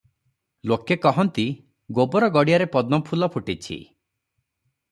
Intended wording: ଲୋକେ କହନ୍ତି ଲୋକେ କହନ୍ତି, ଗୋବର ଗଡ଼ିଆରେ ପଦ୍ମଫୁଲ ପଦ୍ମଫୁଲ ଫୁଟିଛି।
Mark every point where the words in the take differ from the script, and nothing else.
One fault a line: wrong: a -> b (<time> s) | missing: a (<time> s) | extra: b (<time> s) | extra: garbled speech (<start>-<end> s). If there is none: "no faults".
missing: ଲୋକେ କହନ୍ତି (1.4 s)
missing: ପଦ୍ମଫୁଲ (3.3 s)